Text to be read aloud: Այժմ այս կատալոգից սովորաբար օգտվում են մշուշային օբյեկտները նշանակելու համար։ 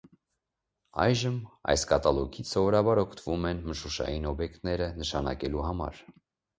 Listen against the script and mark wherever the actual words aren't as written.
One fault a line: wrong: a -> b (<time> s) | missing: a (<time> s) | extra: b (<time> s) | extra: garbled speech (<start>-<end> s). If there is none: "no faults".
no faults